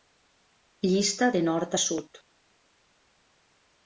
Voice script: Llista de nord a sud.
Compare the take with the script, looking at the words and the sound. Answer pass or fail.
pass